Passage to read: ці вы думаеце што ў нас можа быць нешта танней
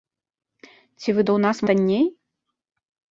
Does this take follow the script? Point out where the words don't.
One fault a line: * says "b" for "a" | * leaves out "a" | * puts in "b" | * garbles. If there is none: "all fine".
* leaves out "думаеце што"
* leaves out "можа быць нешта"